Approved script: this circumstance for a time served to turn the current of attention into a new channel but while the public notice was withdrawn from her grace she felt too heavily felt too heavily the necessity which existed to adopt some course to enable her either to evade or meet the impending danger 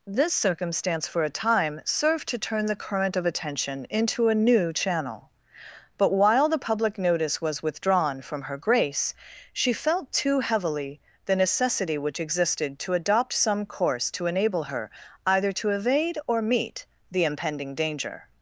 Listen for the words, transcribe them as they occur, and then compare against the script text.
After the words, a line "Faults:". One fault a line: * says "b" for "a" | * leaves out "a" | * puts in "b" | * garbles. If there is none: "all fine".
this circumstance for a time served to turn the current of attention into a new channel but while the public notice was withdrawn from her grace she felt too heavily the necessity which existed to adopt some course to enable her either to evade or meet the impending danger
Faults:
* leaves out "felt too heavily"